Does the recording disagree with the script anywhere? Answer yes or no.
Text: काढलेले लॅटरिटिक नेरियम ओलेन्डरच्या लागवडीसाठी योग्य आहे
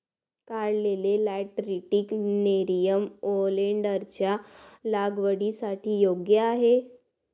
no